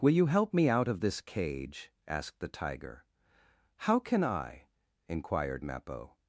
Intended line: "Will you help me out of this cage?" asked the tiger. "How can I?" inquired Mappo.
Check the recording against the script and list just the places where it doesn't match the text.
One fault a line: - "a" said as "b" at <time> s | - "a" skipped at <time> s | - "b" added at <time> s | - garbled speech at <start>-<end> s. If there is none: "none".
none